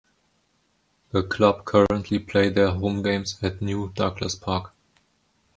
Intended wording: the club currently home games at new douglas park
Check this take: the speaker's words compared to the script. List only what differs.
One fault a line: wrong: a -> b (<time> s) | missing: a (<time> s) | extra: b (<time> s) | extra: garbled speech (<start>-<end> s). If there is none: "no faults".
extra: play their (2.2 s)